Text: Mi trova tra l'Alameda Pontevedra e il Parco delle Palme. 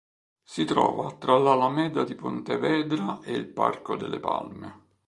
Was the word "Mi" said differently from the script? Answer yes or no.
yes